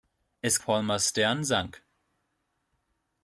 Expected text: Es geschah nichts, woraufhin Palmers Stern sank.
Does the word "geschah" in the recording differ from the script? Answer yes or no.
yes